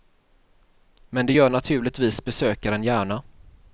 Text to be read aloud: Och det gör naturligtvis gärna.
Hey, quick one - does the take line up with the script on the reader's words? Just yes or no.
no